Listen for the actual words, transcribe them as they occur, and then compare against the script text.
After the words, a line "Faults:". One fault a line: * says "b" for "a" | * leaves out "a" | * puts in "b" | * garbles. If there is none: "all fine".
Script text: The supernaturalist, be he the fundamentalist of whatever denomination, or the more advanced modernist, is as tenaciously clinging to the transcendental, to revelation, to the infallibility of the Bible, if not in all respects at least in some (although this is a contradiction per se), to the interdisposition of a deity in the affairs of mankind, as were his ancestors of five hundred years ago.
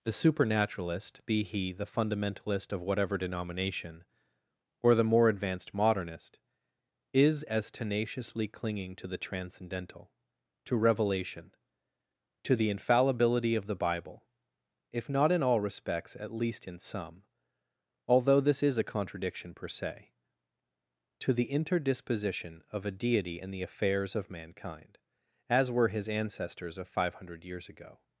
The supernaturalist, be he the fundamentalist of whatever denomination, or the more advanced modernist, is as tenaciously clinging to the transcendental, to revelation, to the infallibility of the Bible, if not in all respects at least in some (although this is a contradiction per se), to the interdisposition of a deity in the affairs of mankind, as were his ancestors of five hundred years ago.
Faults:
all fine